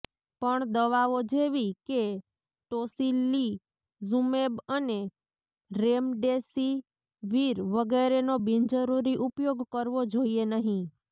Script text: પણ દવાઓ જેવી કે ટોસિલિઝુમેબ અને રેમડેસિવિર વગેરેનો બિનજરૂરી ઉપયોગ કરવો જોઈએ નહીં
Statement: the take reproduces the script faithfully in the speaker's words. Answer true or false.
true